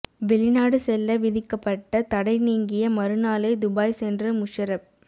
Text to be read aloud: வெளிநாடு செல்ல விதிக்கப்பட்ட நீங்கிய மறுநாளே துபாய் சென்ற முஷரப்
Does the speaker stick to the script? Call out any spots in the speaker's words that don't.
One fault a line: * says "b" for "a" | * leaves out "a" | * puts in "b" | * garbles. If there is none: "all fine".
* puts in "தடை"